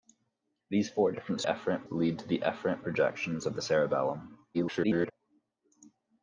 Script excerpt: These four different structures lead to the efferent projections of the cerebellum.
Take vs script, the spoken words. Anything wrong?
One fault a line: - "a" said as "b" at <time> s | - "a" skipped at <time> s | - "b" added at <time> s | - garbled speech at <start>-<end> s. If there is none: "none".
- "structures" said as "efferent" at 1.4 s
- garbled speech at 4.5-5.1 s